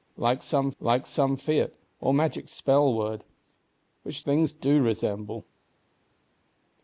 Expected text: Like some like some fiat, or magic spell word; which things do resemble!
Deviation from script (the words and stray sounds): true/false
false